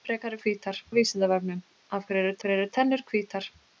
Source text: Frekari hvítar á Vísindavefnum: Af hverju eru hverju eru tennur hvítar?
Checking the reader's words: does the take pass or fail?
pass